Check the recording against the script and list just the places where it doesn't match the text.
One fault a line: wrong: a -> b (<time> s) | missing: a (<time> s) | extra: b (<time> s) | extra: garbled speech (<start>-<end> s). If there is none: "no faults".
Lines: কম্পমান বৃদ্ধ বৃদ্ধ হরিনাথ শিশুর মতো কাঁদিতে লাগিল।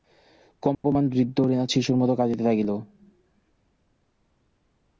missing: বৃদ্ধ (1.4 s)